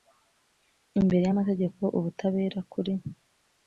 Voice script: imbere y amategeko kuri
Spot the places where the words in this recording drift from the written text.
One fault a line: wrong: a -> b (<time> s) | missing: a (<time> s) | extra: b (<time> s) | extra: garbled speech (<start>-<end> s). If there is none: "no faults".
extra: ubutabera (2.0 s)